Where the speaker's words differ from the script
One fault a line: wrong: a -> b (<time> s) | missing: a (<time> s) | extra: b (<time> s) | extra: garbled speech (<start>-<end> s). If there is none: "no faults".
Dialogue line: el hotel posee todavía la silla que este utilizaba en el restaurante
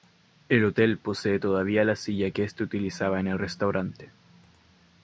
no faults